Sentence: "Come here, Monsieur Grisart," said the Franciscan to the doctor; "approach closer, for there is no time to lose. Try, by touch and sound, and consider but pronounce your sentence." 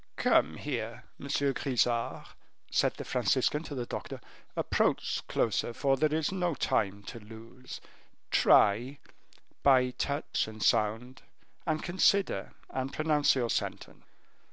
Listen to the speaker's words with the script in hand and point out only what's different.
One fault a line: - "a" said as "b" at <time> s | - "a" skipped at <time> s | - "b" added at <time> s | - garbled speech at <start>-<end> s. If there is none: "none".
- "but" said as "and" at 12.7 s